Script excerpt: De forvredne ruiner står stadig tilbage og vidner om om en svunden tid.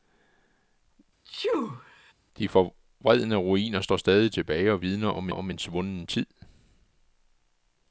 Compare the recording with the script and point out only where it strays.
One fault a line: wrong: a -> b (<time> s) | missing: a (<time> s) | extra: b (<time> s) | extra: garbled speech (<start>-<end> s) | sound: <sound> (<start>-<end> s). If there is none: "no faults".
sound: sneeze (1.2-2.1 s)